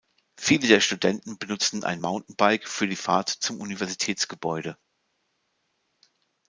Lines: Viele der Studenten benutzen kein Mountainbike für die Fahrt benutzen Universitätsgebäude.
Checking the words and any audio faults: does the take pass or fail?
fail